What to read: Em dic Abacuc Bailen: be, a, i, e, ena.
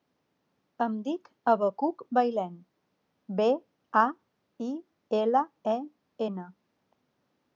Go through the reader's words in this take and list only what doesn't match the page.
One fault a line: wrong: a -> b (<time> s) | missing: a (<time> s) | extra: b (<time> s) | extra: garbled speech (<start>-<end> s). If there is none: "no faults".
extra: ela (5.2 s)